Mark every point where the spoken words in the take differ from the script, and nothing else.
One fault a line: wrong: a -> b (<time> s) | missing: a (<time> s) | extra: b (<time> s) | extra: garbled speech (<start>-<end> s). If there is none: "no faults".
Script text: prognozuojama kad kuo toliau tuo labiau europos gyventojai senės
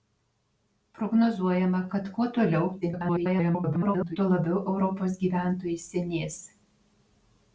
extra: garbled speech (2.8-4.2 s)